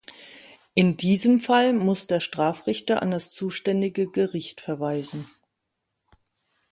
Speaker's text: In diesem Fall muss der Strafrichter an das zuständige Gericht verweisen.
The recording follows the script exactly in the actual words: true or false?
true